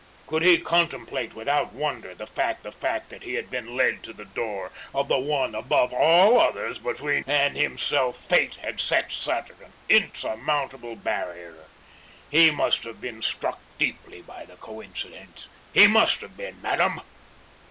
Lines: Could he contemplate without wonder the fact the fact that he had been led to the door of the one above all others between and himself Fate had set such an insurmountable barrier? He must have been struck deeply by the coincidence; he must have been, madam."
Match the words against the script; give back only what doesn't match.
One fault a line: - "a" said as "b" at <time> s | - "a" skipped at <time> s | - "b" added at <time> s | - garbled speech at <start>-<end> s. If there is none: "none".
none